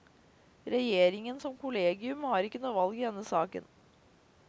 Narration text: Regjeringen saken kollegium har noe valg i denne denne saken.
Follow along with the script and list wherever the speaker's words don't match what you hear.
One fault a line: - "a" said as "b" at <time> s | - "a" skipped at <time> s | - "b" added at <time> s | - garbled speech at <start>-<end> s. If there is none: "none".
- "saken" said as "som" at 1.4 s
- "ikke" added at 2.5 s
- "denne" skipped at 3.3 s